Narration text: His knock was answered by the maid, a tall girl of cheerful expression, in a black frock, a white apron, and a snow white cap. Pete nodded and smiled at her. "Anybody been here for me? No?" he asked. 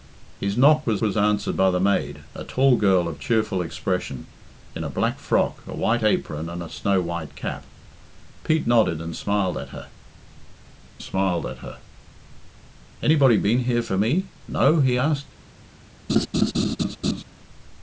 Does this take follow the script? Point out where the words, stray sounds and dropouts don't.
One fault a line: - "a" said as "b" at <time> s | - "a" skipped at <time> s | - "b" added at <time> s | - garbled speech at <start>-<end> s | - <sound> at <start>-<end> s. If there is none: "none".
- "was" added at 1.0 s
- "smiled at her" added at 11.0 s
- laugh at 16.1-17.2 s